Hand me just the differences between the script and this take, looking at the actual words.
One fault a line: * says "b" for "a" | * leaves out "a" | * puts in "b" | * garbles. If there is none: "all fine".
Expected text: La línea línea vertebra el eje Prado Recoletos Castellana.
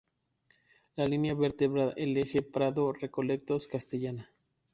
* leaves out "línea"